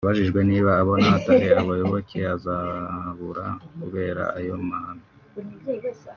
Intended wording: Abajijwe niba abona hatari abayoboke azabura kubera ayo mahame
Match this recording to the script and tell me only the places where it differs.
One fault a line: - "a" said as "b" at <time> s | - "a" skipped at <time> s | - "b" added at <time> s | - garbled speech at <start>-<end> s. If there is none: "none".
none